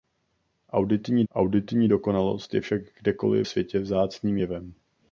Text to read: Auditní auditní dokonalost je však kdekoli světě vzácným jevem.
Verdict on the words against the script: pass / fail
pass